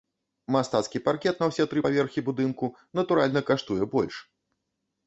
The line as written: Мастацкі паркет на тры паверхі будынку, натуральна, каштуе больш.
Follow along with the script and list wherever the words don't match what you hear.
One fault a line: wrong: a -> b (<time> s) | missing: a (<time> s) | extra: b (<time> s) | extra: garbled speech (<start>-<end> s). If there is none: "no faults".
extra: ўсе (1.5 s)